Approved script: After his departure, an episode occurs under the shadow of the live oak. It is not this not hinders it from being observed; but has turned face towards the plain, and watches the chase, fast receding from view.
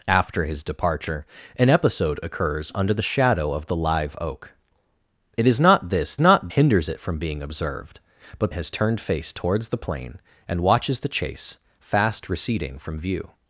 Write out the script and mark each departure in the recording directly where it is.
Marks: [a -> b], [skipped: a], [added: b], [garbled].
After his departure, an episode occurs under the shadow of the live oak. It is not this not hinders it from being observed; but has turned face towards the plain, and watches the chase, fast receding from view.